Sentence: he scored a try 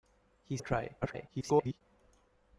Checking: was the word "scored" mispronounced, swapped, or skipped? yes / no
yes